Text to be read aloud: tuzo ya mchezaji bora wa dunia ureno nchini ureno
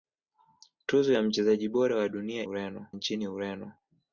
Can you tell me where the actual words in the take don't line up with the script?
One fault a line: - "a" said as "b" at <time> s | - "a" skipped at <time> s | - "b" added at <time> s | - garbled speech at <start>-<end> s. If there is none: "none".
none